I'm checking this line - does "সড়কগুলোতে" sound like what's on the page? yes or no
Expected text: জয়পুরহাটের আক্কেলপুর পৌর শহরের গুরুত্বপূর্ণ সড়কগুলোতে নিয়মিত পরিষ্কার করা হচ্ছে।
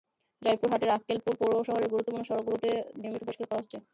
yes